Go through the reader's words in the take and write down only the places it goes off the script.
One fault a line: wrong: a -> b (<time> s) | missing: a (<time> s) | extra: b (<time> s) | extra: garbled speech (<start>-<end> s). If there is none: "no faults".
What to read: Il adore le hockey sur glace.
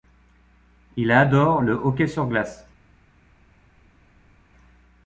no faults